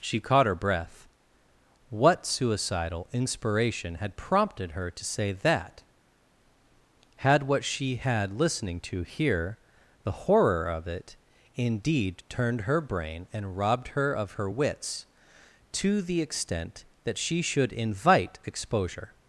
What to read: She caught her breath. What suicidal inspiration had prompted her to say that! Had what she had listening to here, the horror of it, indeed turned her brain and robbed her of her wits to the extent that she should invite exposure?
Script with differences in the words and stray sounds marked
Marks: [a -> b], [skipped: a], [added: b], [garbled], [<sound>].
She caught her breath. What suicidal inspiration had prompted her to say that! Had what she had listening to here, the horror of it, indeed turned her brain and robbed her of her wits to the extent that she should invite exposure?